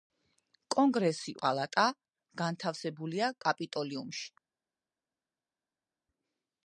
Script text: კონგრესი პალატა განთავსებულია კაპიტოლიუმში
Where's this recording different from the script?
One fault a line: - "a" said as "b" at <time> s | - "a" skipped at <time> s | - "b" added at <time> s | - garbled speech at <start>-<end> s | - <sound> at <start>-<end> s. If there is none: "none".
none